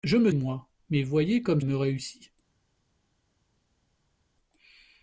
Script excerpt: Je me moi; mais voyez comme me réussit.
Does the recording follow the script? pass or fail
pass